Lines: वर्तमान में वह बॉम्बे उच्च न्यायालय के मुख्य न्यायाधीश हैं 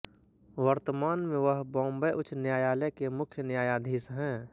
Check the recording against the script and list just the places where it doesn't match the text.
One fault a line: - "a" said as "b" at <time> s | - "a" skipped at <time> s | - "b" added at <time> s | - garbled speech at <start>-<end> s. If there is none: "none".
none